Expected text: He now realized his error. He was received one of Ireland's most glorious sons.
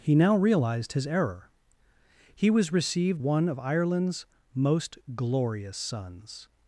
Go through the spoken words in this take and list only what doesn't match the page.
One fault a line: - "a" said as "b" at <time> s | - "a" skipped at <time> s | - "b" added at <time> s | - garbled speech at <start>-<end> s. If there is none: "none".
none